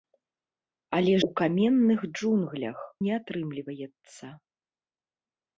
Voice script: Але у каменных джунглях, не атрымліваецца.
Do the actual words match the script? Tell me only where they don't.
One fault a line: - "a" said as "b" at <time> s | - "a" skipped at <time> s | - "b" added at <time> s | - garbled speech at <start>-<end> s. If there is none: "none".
none